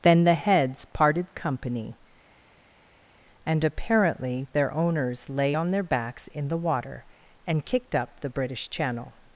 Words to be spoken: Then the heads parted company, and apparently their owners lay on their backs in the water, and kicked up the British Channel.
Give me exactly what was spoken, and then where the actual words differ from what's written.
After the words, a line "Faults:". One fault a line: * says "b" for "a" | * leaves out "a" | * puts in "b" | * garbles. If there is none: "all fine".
Then the heads parted company, and apparently their owners lay on their backs in the water, and kicked up the British Channel.
Faults:
all fine